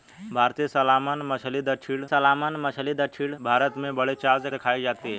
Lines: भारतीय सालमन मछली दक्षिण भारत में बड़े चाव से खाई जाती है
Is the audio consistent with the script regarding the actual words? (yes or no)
no